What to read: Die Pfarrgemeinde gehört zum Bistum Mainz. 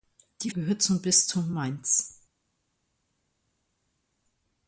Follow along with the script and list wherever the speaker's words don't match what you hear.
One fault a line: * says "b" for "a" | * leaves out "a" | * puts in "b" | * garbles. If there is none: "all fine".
* leaves out "Pfarrgemeinde"